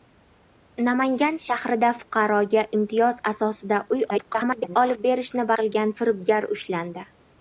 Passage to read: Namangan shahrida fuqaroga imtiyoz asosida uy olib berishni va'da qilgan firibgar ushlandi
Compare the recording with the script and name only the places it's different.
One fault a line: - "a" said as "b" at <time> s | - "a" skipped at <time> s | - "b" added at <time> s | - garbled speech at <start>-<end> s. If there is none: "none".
- garbled speech at 4.1-4.8 s
- "va'da" skipped at 5.5 s